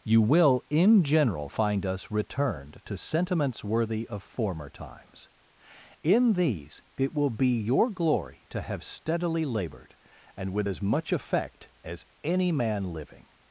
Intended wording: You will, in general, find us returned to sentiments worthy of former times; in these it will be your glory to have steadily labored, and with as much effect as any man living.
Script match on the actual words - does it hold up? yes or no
yes